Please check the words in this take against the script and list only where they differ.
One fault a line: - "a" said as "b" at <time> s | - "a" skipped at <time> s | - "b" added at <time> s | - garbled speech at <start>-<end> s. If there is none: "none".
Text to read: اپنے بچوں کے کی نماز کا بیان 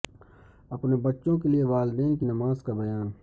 - "لئے والدین" added at 1.5 s